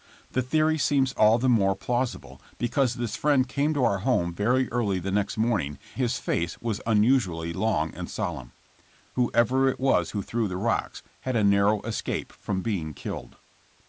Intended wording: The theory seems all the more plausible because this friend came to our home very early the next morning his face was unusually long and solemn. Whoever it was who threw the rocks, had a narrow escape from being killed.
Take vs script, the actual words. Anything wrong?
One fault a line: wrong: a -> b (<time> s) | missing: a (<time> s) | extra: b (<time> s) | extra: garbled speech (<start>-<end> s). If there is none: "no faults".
no faults